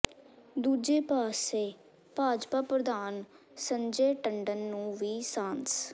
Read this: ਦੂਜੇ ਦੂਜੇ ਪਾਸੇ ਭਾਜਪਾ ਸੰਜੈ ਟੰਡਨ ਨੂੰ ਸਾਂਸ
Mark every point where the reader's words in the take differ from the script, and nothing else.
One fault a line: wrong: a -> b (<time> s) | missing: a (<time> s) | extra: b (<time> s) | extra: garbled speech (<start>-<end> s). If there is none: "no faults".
missing: ਦੂਜੇ (1.0 s)
extra: ਪ੍ਰਧਾਨ (2.6 s)
extra: ਵੀ (5.0 s)